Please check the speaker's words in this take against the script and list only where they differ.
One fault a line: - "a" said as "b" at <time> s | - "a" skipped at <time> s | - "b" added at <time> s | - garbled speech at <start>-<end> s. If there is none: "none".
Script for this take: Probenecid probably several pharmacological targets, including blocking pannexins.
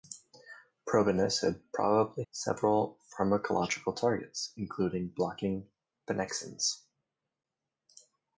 none